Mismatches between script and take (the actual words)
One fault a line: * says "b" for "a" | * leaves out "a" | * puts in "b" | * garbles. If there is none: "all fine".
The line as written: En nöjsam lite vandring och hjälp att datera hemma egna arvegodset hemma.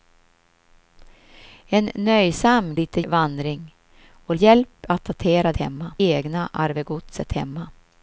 all fine